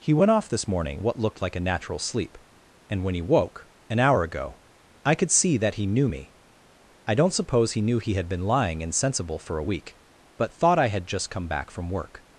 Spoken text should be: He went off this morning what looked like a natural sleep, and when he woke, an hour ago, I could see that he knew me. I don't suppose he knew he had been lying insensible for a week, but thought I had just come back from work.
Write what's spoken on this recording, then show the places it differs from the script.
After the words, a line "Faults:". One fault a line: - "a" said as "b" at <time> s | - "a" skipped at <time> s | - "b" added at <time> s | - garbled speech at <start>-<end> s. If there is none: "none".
He went off this morning what looked like a natural sleep, and when he woke, an hour ago, I could see that he knew me. I don't suppose he knew he had been lying insensible for a week, but thought I had just come back from work.
Faults:
none